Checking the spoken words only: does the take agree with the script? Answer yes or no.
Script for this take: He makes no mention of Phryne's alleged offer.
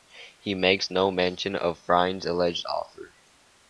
yes